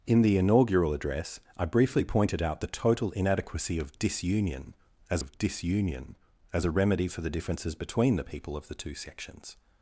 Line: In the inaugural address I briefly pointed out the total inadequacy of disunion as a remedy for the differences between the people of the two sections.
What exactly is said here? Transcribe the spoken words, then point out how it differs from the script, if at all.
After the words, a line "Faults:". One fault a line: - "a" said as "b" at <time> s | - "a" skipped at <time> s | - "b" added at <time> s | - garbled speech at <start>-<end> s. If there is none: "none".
In the inaugural address I briefly pointed out the total inadequacy of disunion as of disunion as a remedy for the differences between the people of the two sections.
Faults:
- "of disunion as" added at 5.2 s